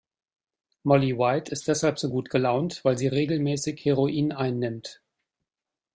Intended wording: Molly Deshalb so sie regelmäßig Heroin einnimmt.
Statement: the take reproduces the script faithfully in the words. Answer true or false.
false